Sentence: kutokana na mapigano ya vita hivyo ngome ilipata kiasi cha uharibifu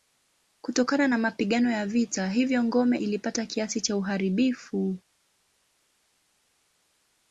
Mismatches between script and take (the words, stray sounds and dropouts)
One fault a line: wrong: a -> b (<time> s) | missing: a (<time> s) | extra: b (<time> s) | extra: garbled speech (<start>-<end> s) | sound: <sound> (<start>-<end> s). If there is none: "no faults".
no faults